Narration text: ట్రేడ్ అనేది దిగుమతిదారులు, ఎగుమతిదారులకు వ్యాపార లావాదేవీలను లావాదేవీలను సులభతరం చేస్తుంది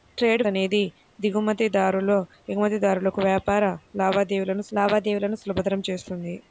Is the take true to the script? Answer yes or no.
yes